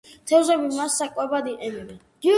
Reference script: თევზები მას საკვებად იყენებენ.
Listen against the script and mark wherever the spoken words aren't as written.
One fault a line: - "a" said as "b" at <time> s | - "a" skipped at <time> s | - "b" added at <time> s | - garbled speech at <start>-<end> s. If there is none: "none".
none